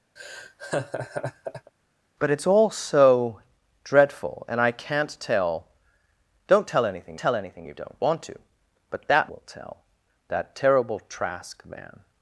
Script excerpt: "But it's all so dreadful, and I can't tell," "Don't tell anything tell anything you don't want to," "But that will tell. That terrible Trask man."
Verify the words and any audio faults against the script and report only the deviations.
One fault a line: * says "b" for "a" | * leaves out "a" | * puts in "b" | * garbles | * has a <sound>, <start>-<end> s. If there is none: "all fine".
* has a laugh, 0.2-1.7 s